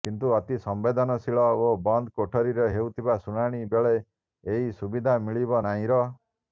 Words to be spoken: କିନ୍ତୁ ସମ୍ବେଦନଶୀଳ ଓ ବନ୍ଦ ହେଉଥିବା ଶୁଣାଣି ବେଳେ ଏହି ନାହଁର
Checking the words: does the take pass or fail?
fail